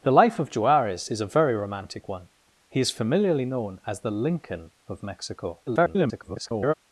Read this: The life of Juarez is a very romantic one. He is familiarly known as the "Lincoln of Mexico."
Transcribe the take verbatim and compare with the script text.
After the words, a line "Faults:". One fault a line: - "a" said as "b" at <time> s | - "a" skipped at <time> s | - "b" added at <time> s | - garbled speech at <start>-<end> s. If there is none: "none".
The life of Juarez is a very romantic one. He is familiarly known as the "Lincoln of Mexico." [garbled]
Faults:
- garbled speech at 5.7-6.7 s